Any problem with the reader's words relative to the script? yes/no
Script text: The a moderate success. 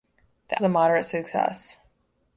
no